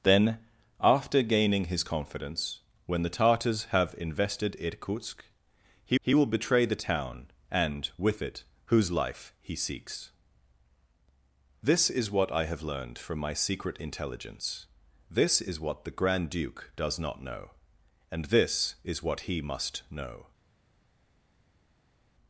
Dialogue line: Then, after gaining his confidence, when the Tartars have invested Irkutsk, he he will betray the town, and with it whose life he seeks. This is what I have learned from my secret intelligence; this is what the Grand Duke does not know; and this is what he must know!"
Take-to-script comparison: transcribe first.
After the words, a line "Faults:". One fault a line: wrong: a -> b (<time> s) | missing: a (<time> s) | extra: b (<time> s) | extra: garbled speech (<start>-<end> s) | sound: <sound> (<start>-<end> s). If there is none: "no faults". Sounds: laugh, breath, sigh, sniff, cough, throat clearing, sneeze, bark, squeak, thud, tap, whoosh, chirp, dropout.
Then, after gaining his confidence, when the Tartars have invested Irkutsk, he he will betray the town, and with it whose life he seeks. This is what I have learned from my secret intelligence; this is what the Grand Duke does not know; and this is what he must know!"
Faults:
no faults